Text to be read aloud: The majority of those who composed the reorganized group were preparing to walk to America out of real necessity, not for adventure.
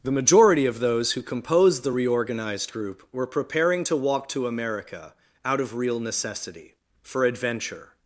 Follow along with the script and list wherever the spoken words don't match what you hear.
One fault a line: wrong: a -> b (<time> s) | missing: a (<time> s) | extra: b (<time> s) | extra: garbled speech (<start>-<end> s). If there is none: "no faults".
missing: not (6.7 s)